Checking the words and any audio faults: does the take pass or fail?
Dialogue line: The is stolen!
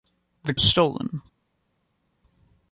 pass